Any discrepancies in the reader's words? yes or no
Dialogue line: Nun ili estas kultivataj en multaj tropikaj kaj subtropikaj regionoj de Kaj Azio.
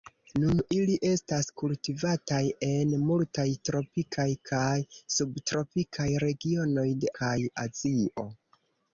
no